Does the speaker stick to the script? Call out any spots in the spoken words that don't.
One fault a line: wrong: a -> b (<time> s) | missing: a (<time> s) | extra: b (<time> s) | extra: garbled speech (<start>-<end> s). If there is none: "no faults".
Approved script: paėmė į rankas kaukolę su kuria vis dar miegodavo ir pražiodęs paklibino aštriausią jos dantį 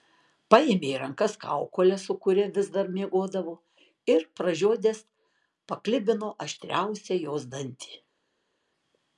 no faults